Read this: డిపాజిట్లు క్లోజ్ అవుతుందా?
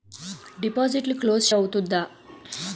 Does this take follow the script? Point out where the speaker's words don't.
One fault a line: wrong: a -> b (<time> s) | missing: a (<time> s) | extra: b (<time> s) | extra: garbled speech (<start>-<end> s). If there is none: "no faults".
no faults